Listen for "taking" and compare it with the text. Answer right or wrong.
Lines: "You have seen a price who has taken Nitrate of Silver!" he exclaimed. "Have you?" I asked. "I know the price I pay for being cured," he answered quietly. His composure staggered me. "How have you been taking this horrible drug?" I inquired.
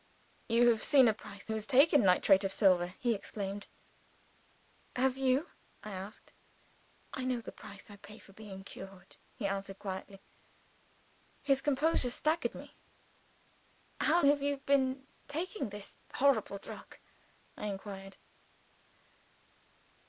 right